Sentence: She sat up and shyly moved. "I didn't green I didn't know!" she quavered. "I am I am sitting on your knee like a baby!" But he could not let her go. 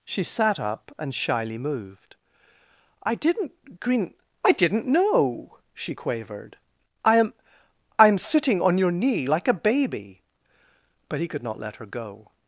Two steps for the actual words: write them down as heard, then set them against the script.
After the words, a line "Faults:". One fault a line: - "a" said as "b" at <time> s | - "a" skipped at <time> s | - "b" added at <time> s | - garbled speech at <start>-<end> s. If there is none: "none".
She sat up and shyly moved. "I didn't green I didn't know!" she quavered. "I am I am sitting on your knee like a baby!" But he could not let her go.
Faults:
none